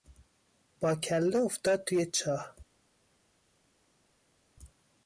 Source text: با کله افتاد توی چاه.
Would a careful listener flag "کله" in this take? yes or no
no